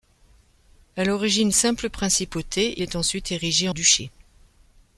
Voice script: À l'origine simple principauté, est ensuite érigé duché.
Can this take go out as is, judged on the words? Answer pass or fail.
pass